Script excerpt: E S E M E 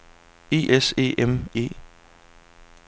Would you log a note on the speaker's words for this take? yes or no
no